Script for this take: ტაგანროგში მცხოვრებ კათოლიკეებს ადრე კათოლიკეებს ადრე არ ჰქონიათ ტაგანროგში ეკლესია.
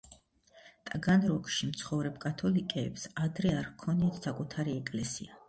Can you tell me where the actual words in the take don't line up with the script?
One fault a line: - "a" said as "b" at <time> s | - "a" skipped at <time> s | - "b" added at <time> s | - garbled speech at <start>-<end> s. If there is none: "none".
- "კათოლიკეებს ადრე" skipped at 3.5 s
- "ტაგანროგში" said as "საკუთარი" at 4.3 s